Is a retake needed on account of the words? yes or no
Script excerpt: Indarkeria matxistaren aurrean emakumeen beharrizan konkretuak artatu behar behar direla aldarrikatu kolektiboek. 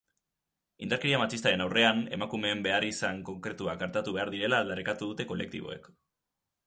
yes